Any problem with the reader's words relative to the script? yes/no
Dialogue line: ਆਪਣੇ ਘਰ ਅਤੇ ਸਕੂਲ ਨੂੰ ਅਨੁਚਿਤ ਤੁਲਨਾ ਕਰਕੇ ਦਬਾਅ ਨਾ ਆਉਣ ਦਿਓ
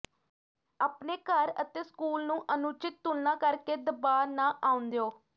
no